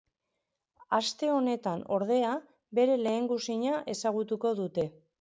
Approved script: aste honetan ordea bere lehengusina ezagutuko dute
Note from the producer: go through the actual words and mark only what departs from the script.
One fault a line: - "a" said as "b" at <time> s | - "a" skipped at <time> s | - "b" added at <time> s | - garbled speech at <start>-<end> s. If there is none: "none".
none